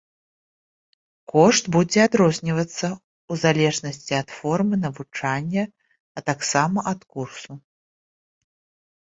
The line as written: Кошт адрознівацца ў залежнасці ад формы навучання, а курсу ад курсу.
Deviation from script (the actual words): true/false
true